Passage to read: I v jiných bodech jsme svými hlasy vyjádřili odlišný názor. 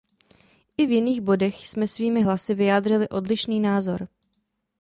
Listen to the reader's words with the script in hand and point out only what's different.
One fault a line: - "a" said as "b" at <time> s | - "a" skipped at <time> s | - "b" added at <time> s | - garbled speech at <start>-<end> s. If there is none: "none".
none